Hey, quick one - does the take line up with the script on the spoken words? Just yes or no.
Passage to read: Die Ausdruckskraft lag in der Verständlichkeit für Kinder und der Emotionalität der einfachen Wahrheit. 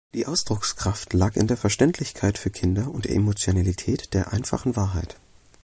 yes